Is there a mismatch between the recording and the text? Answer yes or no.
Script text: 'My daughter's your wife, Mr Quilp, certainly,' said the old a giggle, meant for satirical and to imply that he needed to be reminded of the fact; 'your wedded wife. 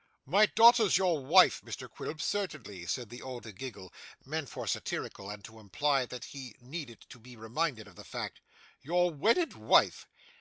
no